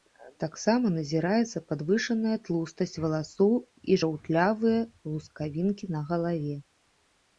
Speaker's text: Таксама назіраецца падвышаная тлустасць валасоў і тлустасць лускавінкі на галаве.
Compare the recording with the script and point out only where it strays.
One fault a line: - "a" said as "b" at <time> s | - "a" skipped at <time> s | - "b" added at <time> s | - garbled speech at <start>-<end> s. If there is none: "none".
- "тлустасць" said as "жаўтлявыя" at 4.0 s